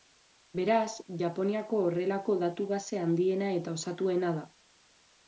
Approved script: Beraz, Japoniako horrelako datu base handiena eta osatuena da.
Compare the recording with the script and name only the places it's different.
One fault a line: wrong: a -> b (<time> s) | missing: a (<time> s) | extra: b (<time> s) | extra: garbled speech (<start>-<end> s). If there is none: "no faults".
no faults